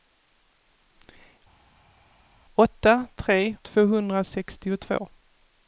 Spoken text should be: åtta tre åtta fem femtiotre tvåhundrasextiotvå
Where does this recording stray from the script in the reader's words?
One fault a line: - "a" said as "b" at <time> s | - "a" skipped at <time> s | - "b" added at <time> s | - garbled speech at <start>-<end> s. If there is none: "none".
- "åtta fem femtiotre" skipped at 3.6 s